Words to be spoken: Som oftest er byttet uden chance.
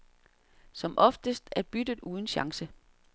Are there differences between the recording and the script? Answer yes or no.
no